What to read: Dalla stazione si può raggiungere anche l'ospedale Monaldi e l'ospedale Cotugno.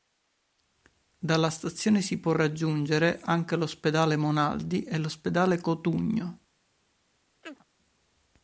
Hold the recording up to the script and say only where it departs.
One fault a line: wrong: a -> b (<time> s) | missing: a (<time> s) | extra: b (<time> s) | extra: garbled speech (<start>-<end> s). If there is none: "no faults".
no faults